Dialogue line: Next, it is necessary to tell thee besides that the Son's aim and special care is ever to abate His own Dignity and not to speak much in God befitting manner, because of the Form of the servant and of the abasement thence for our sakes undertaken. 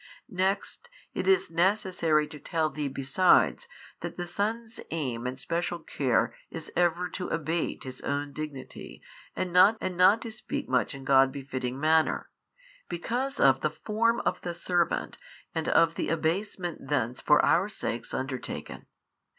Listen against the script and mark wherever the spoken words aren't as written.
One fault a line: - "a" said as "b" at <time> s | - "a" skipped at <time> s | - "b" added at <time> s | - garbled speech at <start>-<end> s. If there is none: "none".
- "and not" added at 9.8 s